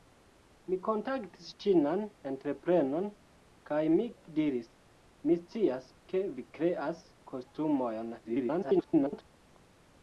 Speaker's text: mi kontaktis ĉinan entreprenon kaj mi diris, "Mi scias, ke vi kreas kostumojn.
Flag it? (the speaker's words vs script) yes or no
yes